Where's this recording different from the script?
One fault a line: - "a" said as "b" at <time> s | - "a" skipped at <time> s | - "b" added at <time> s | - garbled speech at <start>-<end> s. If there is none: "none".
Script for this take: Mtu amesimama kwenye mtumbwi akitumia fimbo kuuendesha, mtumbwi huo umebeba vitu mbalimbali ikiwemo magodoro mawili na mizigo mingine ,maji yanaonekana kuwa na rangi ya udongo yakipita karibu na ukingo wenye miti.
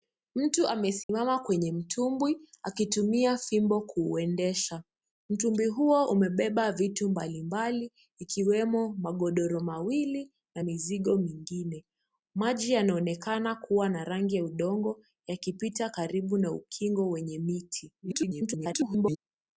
- garbled speech at 18.0-19.2 s